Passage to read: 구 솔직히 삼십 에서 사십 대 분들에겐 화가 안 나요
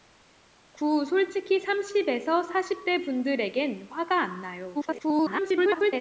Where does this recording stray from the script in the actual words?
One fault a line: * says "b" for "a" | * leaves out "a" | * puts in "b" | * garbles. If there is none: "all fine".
* garbles